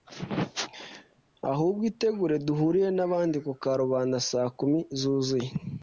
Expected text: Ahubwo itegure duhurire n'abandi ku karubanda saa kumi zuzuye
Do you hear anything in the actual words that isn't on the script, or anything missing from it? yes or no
no